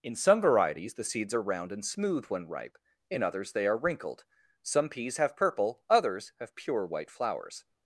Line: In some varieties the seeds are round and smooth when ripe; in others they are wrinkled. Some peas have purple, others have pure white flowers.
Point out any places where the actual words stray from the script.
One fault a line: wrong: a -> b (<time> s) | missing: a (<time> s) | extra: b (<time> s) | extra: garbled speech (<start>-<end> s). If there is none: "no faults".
no faults